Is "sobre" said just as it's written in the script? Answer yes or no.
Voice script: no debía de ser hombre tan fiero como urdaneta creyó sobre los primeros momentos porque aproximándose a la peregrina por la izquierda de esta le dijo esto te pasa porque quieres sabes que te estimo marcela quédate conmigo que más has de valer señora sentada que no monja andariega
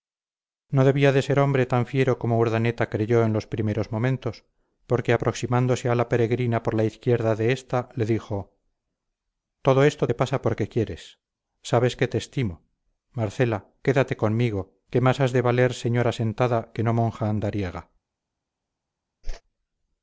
no